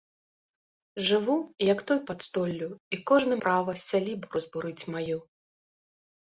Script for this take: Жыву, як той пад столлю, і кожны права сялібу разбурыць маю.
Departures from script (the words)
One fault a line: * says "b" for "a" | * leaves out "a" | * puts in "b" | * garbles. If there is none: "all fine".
all fine